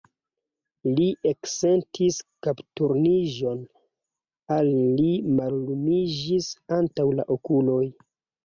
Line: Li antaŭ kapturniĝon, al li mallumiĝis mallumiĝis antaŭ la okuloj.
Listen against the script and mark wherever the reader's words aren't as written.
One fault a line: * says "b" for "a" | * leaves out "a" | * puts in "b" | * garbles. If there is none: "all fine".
* says "eksentis" for "antaŭ"
* leaves out "mallumiĝis"